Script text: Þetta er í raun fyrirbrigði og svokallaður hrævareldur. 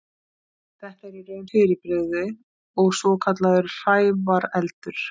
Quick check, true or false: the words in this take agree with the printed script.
true